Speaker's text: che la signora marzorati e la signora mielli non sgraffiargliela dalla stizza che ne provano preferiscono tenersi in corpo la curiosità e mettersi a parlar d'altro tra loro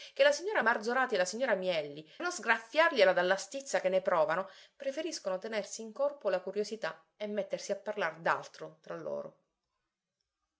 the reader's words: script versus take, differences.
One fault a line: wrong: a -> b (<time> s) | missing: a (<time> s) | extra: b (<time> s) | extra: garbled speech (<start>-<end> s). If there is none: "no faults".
no faults